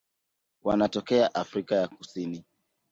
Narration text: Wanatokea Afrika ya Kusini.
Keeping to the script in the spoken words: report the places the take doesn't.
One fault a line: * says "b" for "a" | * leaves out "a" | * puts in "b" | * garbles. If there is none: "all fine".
all fine